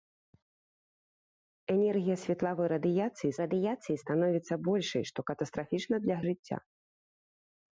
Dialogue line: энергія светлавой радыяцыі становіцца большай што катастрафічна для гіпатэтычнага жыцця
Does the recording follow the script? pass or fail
fail